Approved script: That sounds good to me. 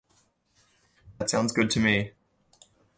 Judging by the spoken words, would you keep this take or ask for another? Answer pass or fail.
pass